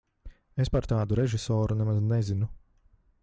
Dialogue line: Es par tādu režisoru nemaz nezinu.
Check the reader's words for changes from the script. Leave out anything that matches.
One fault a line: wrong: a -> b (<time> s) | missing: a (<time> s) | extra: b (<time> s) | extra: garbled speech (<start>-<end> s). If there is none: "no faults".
no faults